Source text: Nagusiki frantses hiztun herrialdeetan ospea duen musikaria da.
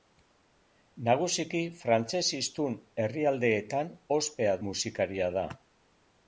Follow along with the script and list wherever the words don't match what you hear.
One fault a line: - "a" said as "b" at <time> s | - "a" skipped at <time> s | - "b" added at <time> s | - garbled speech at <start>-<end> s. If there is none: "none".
- "duen" skipped at 4.6 s